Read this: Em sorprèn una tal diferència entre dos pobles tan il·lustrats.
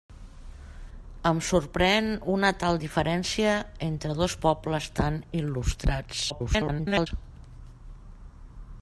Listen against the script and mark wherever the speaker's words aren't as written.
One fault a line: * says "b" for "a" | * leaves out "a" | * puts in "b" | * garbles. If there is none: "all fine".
* garbles